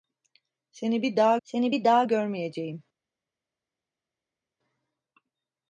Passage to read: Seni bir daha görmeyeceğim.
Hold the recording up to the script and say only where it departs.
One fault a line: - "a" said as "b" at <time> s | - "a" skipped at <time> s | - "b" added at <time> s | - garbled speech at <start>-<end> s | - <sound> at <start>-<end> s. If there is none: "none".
- "seni bir daha" added at 1.4 s